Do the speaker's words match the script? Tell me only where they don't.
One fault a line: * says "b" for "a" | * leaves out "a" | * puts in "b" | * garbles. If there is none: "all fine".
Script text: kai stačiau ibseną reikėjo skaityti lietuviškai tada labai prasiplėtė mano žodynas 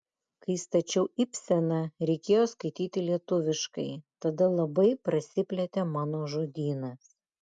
all fine